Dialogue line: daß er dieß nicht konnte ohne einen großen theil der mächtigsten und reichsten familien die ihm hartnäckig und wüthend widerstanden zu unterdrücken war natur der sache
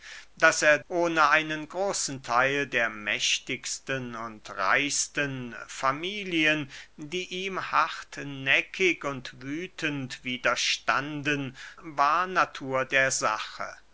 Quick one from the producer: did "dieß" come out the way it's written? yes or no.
no